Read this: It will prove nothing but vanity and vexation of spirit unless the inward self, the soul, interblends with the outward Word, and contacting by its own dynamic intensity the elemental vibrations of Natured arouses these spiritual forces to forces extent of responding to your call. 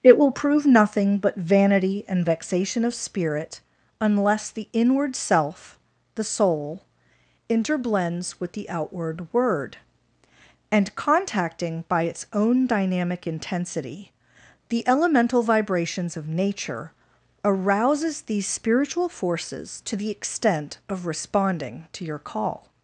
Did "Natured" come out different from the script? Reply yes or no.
yes